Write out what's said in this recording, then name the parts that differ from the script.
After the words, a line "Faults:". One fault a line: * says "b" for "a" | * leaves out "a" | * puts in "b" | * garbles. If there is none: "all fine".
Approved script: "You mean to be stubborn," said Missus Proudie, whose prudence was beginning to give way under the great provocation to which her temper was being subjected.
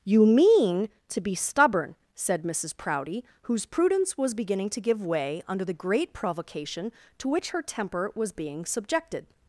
"You mean to be stubborn," said Missus Proudie, whose prudence was beginning to give way under the great provocation to which her temper was being subjected.
Faults:
all fine